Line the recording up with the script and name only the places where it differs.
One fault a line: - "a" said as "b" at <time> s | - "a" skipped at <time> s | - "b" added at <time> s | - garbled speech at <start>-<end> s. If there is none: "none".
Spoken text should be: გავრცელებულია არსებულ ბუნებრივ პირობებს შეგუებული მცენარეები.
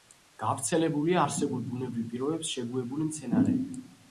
none